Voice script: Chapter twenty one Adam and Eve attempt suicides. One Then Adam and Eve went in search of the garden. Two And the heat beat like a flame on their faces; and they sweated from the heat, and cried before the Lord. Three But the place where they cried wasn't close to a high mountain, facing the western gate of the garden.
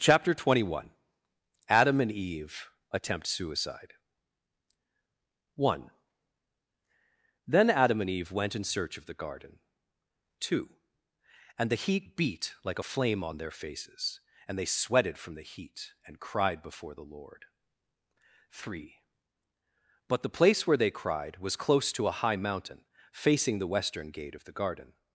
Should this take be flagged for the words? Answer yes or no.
yes